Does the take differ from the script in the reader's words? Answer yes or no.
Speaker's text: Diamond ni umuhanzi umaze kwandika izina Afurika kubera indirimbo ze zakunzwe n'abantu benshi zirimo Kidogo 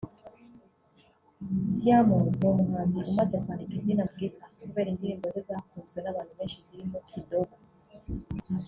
no